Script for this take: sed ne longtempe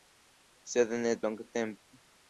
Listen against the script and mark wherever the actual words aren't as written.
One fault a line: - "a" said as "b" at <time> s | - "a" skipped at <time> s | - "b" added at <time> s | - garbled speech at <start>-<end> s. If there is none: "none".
none